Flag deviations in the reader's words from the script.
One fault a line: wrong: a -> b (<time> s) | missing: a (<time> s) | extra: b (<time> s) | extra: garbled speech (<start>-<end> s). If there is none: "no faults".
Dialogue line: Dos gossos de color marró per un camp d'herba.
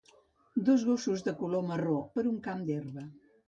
no faults